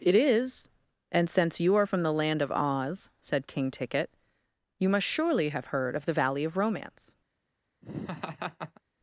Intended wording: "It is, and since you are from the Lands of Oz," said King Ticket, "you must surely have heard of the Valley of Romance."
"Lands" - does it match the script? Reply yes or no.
no